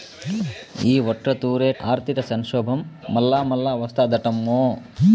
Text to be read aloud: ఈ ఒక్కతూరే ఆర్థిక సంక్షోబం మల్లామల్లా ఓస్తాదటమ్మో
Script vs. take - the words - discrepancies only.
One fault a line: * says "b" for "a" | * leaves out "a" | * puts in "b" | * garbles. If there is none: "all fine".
all fine